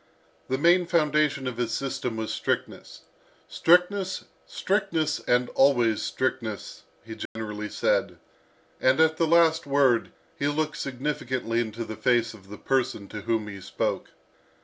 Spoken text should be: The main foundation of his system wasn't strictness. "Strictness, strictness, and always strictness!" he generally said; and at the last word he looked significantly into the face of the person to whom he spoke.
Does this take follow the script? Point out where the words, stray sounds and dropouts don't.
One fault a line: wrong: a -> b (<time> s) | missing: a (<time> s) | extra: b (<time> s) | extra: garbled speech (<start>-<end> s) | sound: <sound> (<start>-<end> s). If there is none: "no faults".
wrong: wasn't -> was (2.2 s)
sound: dropout (7.3-7.4 s)